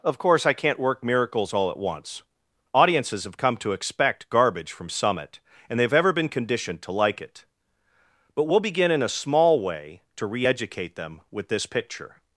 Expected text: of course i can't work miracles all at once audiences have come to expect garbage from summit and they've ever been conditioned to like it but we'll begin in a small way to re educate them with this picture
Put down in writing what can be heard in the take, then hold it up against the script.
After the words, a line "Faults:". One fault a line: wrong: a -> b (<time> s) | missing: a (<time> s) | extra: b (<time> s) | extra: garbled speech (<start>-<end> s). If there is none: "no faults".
of course i can't work miracles all at once audiences have come to expect garbage from summit and they've ever been conditioned to like it but we'll begin in a small way to re educate them with this picture
Faults:
no faults